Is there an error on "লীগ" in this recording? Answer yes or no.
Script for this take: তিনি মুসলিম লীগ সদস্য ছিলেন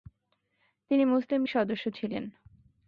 yes